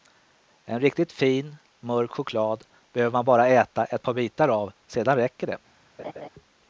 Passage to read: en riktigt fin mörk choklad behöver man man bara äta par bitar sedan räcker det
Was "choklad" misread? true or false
false